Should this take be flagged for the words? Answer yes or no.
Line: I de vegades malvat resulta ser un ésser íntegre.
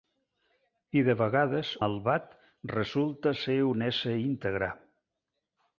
no